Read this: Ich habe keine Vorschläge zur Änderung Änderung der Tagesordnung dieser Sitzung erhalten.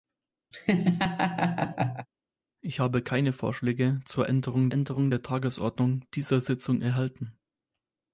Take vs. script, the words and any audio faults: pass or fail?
fail